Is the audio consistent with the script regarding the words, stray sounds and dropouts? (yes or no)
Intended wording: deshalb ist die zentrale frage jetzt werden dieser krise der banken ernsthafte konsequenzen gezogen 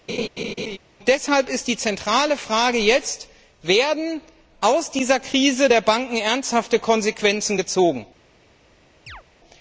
no